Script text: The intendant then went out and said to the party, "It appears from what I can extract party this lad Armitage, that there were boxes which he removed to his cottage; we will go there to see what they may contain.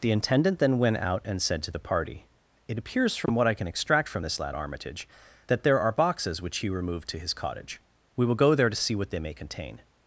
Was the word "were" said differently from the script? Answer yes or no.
yes